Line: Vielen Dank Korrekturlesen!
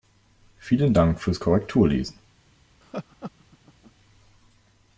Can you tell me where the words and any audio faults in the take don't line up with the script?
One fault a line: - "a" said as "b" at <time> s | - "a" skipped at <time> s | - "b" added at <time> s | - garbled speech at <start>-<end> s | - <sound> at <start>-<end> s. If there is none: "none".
- "fürs" added at 1.2 s
- laugh at 2.8-3.9 s